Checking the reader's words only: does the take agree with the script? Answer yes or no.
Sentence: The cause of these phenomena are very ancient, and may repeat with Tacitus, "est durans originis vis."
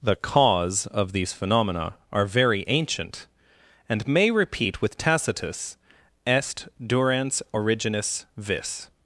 yes